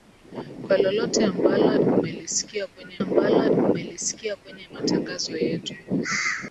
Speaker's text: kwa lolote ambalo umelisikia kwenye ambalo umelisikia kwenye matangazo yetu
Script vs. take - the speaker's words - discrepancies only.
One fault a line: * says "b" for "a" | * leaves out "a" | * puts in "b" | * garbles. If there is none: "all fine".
all fine